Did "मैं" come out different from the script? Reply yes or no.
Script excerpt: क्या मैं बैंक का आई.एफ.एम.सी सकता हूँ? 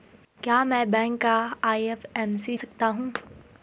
no